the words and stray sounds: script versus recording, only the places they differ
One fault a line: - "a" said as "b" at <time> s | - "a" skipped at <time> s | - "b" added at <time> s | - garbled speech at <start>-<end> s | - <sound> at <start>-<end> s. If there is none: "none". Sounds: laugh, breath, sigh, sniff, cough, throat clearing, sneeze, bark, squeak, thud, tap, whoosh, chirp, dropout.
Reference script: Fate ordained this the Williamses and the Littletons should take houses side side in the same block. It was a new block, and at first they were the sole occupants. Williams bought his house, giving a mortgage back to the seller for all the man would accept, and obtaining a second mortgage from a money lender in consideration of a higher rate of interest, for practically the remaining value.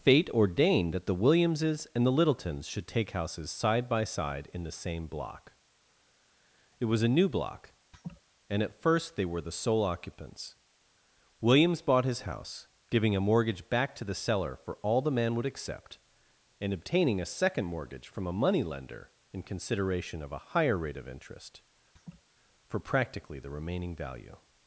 - "this" said as "that" at 0.9 s
- "by" added at 3.9 s
- laugh at 7.9-8.2 s
- laugh at 22.0-22.2 s